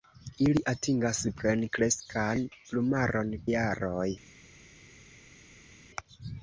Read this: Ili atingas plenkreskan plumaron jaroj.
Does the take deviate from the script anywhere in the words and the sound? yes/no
no